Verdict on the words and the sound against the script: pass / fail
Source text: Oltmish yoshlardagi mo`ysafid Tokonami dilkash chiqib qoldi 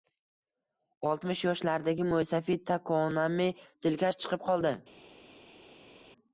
pass